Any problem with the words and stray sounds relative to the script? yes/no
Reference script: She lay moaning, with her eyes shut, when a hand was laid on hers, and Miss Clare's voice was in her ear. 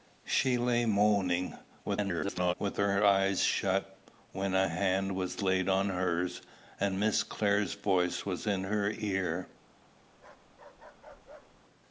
yes